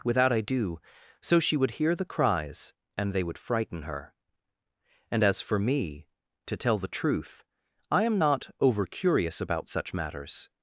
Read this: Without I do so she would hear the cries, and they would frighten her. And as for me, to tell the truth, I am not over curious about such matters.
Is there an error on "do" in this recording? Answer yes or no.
no